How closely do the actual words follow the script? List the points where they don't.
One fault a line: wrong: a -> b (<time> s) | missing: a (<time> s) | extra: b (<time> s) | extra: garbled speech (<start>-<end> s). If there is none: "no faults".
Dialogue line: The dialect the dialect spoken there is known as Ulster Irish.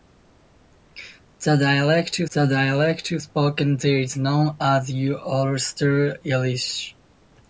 no faults